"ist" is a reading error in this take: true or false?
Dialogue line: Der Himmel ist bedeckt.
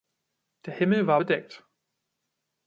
true